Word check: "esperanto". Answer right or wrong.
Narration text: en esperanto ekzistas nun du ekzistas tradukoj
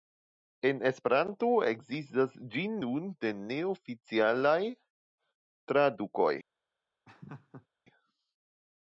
right